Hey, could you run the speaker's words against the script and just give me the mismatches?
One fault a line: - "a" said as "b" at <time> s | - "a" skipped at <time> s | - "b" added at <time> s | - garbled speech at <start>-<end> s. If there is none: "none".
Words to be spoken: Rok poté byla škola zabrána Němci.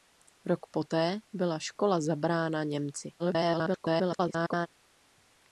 - garbled speech at 3.2-4.7 s